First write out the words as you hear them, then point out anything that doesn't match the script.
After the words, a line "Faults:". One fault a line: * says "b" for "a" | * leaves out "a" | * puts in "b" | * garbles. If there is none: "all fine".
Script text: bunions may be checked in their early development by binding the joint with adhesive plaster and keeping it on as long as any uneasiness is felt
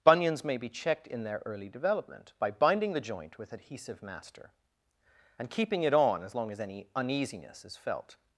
bunions may be checked in their early development by binding the joint with adhesive master and keeping it on as long as any uneasiness is felt
Faults:
* says "master" for "plaster"